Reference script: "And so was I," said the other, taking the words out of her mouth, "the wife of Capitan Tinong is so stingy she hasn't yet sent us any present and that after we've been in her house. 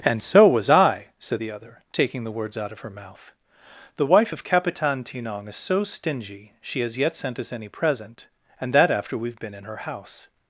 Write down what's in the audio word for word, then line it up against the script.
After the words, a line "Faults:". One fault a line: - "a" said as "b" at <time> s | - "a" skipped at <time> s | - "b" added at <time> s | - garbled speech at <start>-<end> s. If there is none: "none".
"And so was I," said the other, taking the words out of her mouth, "the wife of Capitan Tinong is so stingy she has yet sent us any present and that after we've been in her house.
Faults:
- "hasn't" said as "has" at 6.8 s